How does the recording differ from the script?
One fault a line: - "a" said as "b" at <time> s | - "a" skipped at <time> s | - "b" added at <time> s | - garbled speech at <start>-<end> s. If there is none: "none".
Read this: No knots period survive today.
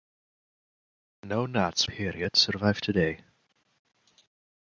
none